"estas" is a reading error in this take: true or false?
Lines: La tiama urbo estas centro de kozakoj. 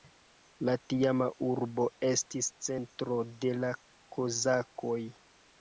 true